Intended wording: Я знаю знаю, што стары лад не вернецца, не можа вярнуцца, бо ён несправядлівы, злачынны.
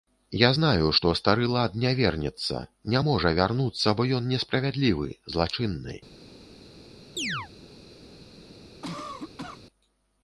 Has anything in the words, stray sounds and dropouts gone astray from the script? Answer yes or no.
yes